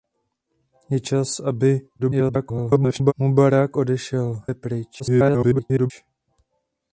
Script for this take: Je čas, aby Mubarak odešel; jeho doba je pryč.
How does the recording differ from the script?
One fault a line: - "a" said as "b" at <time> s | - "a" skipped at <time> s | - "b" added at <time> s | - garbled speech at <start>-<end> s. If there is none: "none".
- garbled speech at 2.0-3.1 s
- "jeho doba" skipped at 4.4 s
- garbled speech at 5.0-5.9 s